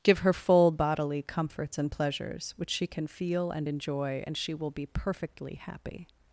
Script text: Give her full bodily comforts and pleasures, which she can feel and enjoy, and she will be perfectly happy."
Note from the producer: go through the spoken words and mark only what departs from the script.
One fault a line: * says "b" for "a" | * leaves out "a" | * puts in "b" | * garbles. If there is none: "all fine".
all fine